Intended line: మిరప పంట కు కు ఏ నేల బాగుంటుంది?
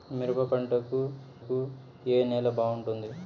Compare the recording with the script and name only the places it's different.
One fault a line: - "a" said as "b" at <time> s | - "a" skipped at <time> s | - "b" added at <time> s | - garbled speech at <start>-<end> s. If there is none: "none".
none